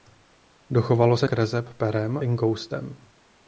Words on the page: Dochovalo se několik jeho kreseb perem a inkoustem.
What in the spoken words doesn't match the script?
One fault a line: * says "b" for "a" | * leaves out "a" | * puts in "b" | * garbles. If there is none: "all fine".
* leaves out "několik jeho"
* leaves out "a"